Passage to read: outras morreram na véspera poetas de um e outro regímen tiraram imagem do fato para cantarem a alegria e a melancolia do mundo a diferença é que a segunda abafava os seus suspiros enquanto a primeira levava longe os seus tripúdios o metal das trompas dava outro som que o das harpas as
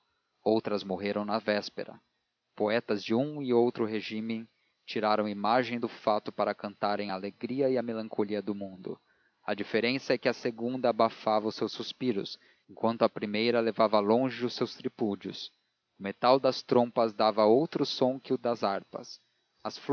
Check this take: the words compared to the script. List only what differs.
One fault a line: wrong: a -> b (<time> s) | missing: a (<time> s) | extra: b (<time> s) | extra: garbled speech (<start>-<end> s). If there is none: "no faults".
no faults